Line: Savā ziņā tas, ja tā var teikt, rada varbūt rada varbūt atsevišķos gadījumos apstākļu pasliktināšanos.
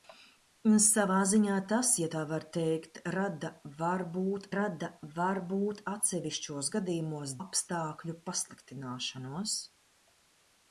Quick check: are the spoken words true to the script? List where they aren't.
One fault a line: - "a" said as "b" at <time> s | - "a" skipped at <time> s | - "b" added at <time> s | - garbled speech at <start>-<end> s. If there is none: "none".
none